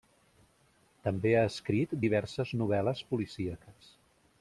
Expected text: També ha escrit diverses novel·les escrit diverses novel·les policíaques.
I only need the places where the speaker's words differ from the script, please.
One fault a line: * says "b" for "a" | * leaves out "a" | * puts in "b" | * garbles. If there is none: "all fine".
* leaves out "escrit diverses novel·les"